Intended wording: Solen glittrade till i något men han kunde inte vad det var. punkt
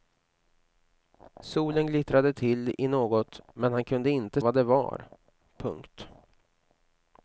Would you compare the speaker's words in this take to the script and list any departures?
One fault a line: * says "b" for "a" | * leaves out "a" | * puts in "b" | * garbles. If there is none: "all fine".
all fine